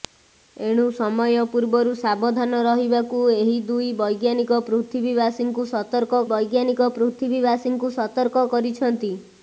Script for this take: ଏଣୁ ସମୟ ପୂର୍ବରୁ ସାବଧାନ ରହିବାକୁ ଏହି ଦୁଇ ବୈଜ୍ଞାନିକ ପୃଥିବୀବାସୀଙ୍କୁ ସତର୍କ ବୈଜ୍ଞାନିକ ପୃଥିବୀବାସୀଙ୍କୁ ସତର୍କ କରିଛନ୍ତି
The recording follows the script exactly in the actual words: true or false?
true